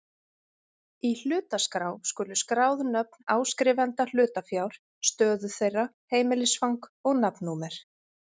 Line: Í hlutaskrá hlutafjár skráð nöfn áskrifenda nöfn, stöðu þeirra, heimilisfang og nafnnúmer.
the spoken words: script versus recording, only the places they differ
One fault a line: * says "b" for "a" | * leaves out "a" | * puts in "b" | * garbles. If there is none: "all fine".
* says "skulu" for "hlutafjár"
* says "hlutafjár" for "nöfn"